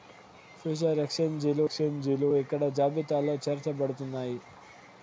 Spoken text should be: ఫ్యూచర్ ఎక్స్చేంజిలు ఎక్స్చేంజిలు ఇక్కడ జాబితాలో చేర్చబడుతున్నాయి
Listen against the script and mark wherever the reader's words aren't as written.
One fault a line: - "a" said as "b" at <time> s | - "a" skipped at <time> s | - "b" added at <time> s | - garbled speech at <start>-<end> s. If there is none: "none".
none